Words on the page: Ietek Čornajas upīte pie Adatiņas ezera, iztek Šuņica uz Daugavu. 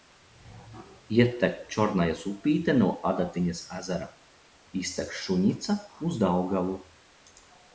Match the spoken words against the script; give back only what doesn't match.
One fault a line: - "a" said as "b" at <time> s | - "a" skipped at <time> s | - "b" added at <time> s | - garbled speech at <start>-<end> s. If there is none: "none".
- "pie" said as "no" at 2.8 s